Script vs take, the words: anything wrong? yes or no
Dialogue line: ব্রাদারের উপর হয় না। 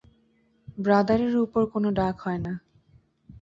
yes